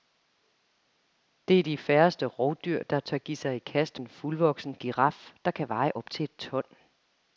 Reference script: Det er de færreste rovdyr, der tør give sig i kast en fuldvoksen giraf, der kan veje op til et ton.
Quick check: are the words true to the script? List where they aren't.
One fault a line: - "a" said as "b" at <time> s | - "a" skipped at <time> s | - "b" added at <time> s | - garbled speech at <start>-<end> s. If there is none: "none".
none